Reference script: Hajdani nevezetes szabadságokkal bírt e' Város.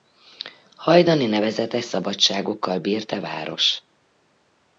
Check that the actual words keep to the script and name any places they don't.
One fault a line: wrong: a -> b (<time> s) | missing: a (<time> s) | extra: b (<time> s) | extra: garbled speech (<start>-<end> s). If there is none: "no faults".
no faults